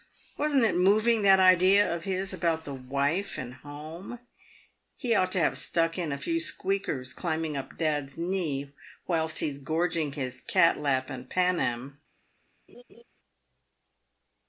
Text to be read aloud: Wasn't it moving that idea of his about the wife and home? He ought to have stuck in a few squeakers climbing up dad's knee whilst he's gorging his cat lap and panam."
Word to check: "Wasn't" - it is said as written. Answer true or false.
true